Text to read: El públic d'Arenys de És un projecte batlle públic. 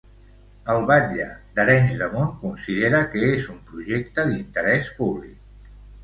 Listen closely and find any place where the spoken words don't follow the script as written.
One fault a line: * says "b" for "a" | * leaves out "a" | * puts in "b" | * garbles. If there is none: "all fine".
* says "batlle" for "públic"
* puts in "Munt considera que"
* says "d'interès" for "batlle"